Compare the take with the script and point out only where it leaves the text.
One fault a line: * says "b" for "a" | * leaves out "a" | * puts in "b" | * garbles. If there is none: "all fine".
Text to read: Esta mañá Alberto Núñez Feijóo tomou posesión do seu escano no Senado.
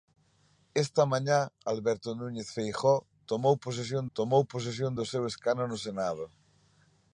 * puts in "tomou posesión"